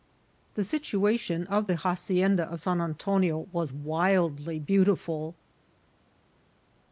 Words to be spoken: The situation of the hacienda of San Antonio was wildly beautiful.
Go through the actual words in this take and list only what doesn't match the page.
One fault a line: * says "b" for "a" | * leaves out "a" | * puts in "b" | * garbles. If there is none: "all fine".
all fine